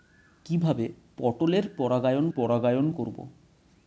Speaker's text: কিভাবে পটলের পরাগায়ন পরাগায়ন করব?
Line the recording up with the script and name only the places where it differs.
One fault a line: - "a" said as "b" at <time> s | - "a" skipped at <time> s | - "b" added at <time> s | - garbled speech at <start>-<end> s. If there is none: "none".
none